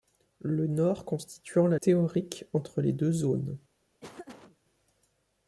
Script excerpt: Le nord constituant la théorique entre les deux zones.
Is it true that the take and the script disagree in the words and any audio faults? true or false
true